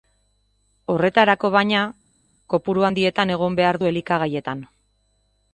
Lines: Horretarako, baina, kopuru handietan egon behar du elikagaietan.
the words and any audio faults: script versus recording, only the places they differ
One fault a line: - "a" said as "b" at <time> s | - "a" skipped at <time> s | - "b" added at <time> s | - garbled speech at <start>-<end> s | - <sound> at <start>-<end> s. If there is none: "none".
none